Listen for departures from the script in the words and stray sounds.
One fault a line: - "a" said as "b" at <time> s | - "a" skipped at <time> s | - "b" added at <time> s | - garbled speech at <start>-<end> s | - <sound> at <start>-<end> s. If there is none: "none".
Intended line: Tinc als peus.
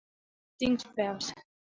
none